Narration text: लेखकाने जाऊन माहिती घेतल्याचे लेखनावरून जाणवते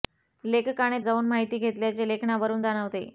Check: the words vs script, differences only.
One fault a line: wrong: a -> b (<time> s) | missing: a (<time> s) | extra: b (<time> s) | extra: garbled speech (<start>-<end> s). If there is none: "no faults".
no faults